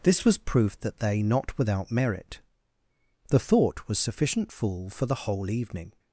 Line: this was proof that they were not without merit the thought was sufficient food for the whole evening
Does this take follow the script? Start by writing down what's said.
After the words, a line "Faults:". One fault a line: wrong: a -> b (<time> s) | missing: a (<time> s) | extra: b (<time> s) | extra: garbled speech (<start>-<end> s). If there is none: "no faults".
this was proof that they not without merit the thought was sufficient fool for the whole evening
Faults:
missing: were (1.2 s)
wrong: food -> fool (4.5 s)